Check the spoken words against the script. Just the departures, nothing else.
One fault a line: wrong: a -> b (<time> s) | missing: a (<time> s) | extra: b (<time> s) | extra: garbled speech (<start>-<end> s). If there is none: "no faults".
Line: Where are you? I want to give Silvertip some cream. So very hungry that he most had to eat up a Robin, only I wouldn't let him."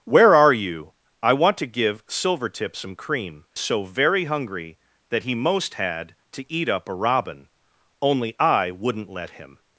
no faults